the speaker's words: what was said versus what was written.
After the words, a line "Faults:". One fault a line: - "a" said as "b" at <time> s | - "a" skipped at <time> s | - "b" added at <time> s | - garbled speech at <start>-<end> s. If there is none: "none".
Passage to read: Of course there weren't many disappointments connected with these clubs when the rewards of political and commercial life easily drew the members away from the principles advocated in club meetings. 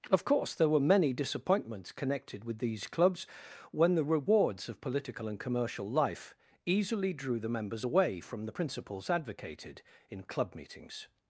Of course there were many disappointments connected with these clubs when the rewards of political and commercial life easily drew the members away from the principles advocated in club meetings.
Faults:
- "weren't" said as "were" at 0.7 s